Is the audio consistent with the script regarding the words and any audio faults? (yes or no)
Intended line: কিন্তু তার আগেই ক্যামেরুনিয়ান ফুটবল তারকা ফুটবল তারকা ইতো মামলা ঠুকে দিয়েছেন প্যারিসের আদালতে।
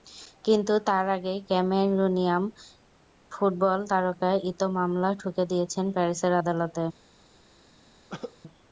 no